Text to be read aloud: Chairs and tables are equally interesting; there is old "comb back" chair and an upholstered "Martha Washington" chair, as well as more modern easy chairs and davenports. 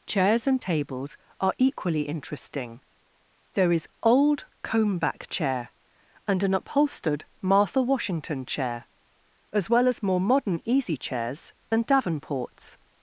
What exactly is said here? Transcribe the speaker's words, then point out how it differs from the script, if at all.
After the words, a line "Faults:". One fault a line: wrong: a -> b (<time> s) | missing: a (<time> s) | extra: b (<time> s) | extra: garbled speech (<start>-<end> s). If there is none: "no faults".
Chairs and tables are equally interesting; there is old "comb back" chair and an upholstered "Martha Washington" chair, as well as more modern easy chairs and davenports.
Faults:
no faults